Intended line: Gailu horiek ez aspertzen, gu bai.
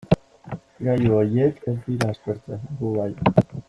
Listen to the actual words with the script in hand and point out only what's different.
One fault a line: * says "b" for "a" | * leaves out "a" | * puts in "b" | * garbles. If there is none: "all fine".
* puts in "dira"